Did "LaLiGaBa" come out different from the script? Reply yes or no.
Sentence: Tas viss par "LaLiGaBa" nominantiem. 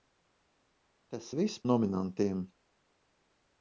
yes